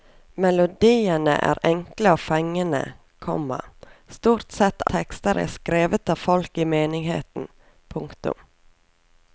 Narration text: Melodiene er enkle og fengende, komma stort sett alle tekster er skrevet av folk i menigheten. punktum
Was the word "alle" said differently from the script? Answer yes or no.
yes